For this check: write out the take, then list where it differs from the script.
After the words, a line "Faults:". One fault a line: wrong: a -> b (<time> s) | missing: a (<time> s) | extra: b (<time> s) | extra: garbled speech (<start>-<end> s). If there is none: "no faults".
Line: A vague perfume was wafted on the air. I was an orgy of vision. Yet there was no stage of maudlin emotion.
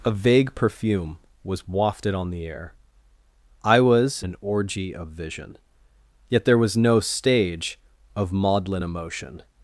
A vague perfume was wafted on the air. I was an orgy of vision. Yet there was no stage of maudlin emotion.
Faults:
no faults